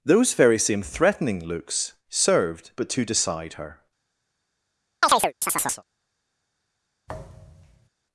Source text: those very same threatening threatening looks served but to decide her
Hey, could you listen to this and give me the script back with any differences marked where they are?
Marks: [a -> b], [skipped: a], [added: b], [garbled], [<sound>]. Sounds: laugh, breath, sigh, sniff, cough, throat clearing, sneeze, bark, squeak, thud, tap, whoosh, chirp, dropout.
those very same threatening [skipped: threatening] looks served but to decide her [chirp] [thud]